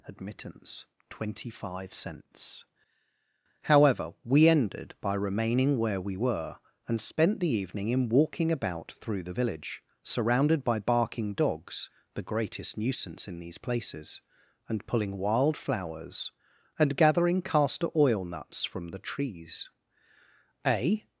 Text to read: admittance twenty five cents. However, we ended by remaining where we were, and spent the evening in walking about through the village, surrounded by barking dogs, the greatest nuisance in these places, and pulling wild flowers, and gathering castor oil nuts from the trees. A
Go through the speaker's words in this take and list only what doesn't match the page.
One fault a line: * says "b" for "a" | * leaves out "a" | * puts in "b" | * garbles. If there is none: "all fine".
all fine